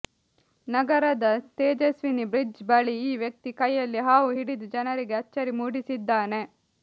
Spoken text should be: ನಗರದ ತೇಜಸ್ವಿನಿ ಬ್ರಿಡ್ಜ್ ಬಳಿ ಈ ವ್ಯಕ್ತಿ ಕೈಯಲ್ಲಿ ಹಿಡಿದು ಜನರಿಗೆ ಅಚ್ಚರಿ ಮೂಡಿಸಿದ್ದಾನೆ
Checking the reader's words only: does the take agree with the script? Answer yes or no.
no